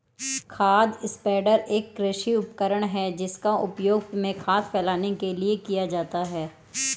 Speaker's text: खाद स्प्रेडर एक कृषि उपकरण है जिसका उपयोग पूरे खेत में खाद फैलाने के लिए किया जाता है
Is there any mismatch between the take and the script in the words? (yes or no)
yes